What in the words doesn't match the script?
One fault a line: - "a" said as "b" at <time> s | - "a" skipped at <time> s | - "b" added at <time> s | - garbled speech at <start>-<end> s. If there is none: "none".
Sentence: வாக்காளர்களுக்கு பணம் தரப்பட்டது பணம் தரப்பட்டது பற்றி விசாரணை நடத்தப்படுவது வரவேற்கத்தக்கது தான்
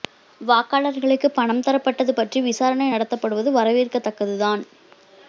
- "பணம் தரப்பட்டது" skipped at 2.1 s